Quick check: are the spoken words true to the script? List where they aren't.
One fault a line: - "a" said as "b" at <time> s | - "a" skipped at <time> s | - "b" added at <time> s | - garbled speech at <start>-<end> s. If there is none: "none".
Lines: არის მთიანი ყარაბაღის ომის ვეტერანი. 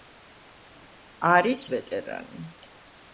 - "მთიანი ყარაბაღის ომის" skipped at 1.6 s